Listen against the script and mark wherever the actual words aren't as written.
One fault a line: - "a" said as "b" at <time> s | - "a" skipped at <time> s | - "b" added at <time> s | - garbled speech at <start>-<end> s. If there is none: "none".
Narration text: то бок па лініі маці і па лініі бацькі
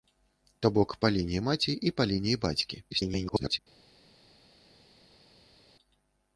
- garbled speech at 2.9-3.6 s